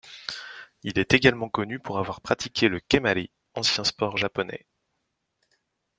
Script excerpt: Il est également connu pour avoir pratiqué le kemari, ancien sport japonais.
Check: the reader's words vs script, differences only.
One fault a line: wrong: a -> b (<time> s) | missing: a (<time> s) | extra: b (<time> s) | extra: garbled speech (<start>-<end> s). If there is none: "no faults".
no faults